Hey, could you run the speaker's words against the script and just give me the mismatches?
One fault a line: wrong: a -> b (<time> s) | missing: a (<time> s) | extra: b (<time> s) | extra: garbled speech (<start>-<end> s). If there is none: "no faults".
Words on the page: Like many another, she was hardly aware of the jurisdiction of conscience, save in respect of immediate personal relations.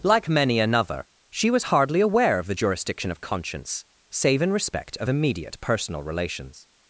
no faults